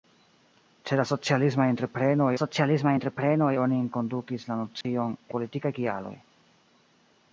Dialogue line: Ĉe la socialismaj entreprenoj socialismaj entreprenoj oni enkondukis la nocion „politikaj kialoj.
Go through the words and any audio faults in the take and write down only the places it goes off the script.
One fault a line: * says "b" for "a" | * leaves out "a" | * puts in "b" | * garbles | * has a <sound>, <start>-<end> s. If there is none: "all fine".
* has a dropout, 4.8-4.8 s